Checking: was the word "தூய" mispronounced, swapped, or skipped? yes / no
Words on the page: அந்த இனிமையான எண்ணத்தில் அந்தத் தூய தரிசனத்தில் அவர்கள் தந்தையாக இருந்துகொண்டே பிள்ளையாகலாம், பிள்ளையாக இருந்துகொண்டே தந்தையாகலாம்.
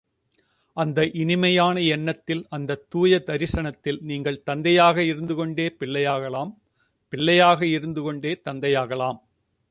no